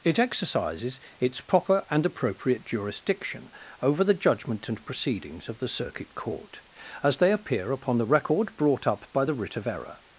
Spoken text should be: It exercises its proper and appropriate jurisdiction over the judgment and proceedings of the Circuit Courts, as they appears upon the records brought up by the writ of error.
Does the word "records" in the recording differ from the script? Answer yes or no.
yes